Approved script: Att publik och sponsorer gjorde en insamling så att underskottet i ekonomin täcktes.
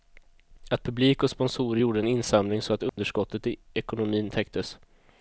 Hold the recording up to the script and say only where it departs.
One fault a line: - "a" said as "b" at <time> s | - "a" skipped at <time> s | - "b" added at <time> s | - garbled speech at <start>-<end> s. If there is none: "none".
none